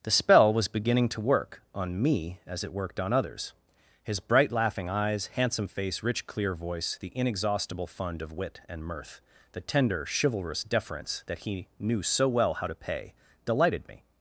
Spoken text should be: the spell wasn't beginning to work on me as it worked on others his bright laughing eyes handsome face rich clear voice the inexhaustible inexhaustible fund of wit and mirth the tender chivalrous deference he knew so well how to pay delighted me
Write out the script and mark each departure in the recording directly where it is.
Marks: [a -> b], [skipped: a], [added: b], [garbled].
the spell [wasn't -> was] beginning to work on me as it worked on others his bright laughing eyes handsome face rich clear voice the inexhaustible [skipped: inexhaustible] fund of wit and mirth the tender chivalrous deference [added: that] he knew so well how to pay delighted me